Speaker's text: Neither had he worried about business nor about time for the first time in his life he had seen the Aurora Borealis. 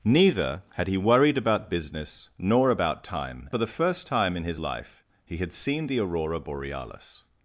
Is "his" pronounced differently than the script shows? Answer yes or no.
no